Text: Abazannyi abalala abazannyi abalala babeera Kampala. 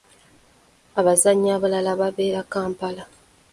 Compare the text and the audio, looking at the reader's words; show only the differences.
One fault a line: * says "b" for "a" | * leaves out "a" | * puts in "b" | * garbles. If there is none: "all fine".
* leaves out "abazannyi abalala"